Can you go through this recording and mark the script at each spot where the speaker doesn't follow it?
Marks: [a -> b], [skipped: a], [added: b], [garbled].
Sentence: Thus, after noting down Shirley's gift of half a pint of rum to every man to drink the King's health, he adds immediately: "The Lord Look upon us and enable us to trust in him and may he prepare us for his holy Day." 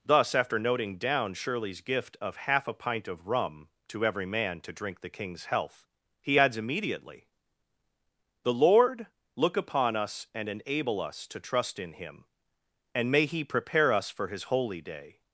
Thus, after noting down Shirley's gift of half a pint of rum to every man to drink the King's health, he adds immediately: "The Lord Look upon us and enable us to trust in him and may he prepare us for his holy Day."